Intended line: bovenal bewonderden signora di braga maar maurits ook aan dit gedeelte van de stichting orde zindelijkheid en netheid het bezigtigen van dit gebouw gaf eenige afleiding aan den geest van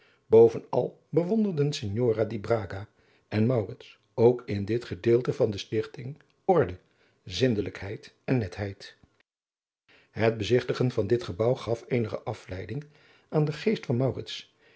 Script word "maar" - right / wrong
wrong